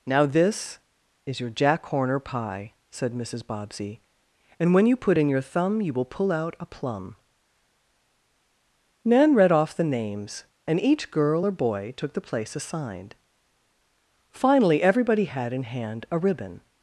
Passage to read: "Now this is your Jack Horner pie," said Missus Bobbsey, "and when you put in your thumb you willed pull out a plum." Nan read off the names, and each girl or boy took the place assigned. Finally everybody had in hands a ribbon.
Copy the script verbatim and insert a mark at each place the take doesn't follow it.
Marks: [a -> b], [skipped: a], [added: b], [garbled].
"Now this is your Jack Horner pie," said Missus Bobbsey, "and when you put in your thumb you [willed -> will] pull out a plum." Nan read off the names, and each girl or boy took the place assigned. Finally everybody had in [hands -> hand] a ribbon.